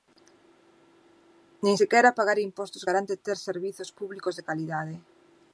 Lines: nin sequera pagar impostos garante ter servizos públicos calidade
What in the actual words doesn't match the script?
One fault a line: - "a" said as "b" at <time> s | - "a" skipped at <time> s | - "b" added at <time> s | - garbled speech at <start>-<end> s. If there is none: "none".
- "de" added at 4.4 s